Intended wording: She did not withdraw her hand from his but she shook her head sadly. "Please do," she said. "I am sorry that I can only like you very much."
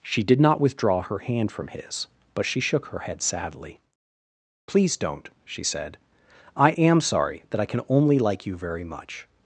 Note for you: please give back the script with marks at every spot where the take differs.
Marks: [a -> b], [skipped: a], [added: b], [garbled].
She did not withdraw her hand from his but she shook her head sadly. "Please [do," -> don't] she said. "I am sorry that I can only like you very much."